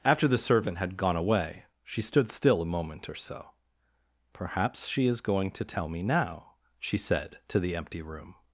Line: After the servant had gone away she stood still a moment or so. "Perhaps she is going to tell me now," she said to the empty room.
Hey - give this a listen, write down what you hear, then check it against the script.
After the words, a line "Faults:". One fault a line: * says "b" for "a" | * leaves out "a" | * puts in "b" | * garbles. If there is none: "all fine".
After the servant had gone away she stood still a moment or so. "Perhaps she is going to tell me now," she said to the empty room.
Faults:
all fine